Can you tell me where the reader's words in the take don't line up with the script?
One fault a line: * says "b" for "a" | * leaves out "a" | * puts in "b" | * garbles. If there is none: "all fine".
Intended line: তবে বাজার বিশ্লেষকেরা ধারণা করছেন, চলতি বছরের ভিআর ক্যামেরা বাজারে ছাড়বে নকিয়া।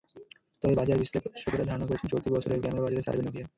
* leaves out "ভিআর"